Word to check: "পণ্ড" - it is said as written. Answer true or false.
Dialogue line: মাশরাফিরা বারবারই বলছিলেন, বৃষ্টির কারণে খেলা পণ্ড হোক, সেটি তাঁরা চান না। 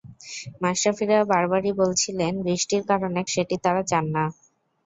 false